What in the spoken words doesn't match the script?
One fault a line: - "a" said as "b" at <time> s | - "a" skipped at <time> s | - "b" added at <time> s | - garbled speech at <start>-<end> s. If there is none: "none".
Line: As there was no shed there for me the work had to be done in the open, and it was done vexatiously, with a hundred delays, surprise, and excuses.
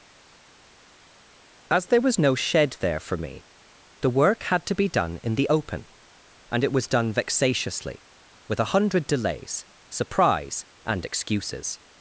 none